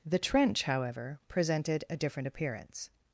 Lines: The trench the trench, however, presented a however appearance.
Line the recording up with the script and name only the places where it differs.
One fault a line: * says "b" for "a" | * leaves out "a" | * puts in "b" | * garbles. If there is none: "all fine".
* leaves out "the trench"
* says "different" for "however"